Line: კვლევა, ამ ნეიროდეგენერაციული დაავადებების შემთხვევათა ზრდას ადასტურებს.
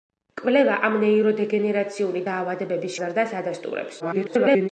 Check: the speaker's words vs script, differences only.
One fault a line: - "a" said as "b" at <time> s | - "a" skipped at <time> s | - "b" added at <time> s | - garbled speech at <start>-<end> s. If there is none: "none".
- "შემთხვევათა" skipped at 3.0 s
- garbled speech at 4.0-4.7 s